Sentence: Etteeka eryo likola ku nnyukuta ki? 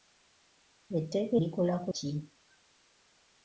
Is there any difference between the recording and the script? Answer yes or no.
yes